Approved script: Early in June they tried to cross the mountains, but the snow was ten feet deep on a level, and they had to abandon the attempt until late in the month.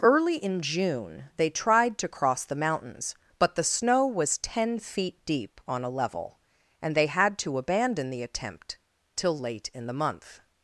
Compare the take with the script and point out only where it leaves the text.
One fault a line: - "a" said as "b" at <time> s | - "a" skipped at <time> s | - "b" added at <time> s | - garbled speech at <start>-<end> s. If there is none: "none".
- "until" said as "till" at 9.1 s